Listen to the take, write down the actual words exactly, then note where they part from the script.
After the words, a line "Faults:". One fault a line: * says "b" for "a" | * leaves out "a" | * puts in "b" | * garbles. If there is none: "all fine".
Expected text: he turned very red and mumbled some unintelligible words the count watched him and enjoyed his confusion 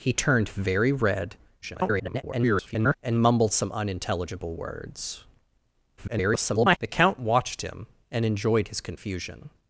he turned very red [garbled] and mumbled some unintelligible words [garbled] the count watched him and enjoyed his confusion
Faults:
* garbles
* garbles